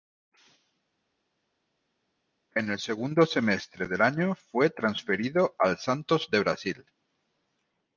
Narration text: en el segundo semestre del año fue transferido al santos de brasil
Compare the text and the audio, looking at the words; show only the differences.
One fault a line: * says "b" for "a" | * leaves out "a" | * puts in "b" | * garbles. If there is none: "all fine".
all fine